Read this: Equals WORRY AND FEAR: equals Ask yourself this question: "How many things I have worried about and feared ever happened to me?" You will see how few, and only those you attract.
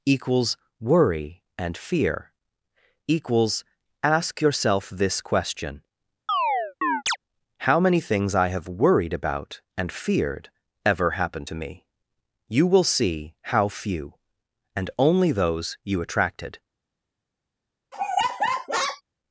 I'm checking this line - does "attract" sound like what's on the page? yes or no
no